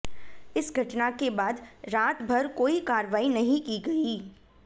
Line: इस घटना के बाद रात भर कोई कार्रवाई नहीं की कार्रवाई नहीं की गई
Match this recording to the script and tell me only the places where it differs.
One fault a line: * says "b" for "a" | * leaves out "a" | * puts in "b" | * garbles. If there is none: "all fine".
* leaves out "कार्रवाई नहीं की"